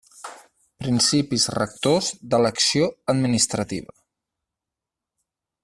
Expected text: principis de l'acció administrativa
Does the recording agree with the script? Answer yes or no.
no